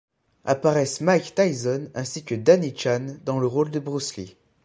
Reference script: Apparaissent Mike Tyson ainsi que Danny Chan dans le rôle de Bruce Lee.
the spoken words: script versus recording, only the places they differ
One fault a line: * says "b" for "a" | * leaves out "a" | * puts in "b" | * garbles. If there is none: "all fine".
all fine